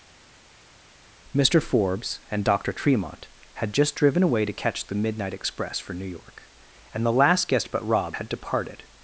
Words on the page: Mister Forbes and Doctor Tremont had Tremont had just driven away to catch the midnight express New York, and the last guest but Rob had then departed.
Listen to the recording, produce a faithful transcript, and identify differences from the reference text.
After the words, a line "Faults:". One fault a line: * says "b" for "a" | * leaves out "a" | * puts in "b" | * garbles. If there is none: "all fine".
Mister Forbes and Doctor Tremont had just driven away to catch the midnight express for New York, and the last guest but Rob had departed.
Faults:
* leaves out "Tremont had"
* puts in "for"
* leaves out "then"